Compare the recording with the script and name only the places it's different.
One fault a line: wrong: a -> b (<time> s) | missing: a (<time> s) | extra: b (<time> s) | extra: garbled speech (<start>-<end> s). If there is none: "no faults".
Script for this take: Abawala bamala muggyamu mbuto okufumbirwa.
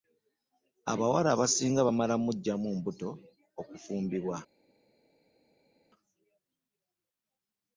extra: abasinga (1.4 s)